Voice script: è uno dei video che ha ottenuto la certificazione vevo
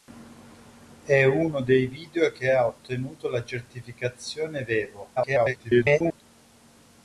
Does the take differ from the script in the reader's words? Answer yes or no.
yes